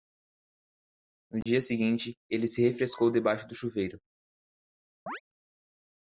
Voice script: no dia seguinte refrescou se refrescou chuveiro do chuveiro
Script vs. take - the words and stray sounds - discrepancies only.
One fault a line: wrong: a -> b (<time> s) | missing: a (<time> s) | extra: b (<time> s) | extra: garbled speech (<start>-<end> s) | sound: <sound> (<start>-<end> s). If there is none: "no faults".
sound: dropout (1.4-1.5 s)
wrong: refrescou -> ele (2.3 s)
wrong: chuveiro -> debaixo (3.1 s)
sound: chirp (5.1-5.2 s)